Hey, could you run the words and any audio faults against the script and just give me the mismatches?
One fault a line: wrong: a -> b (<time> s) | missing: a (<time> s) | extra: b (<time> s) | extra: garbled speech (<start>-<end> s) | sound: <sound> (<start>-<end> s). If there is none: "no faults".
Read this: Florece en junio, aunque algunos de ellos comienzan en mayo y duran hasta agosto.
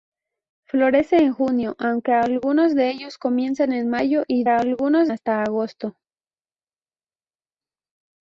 wrong: duran -> algunos (4.5 s)